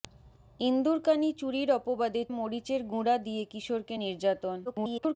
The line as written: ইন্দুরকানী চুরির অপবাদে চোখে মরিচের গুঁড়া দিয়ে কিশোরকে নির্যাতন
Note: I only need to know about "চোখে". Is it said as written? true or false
false